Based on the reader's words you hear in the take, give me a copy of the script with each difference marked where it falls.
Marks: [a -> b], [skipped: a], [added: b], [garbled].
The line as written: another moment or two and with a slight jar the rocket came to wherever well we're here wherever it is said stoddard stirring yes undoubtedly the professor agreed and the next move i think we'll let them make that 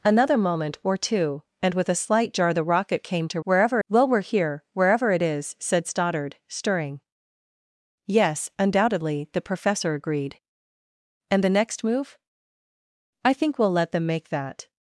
another moment or two and with a slight jar the rocket came to wherever well we're here wherever it is said stoddard stirring yes undoubtedly the professor agreed and the next move i think we'll let them make that